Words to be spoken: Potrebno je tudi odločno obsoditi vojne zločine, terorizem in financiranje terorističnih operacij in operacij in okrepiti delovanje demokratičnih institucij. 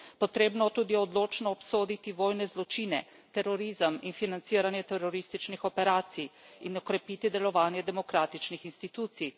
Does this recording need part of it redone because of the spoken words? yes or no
yes